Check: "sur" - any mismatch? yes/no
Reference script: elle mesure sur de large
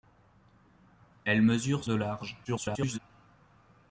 yes